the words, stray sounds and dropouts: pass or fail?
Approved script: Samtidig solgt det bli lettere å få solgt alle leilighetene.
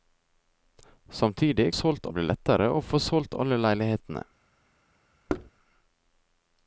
fail